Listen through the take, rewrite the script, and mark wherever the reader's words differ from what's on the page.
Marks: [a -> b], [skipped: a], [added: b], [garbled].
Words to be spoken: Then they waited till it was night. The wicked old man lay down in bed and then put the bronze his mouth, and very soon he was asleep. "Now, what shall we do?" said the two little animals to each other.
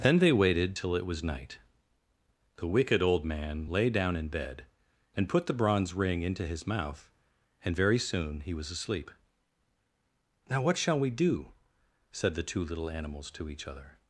Then they waited till it was night. The wicked old man lay down in bed and [skipped: then] put the bronze [added: ring into] his mouth, and very soon he was asleep. "Now, what shall we do?" said the two little animals to each other.